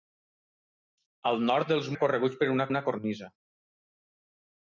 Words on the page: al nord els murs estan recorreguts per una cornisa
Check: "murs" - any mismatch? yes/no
yes